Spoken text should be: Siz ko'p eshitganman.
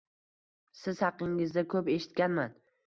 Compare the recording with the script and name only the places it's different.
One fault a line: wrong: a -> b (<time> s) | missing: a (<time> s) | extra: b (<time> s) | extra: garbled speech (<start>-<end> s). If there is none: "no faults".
extra: haqingizda (1.1 s)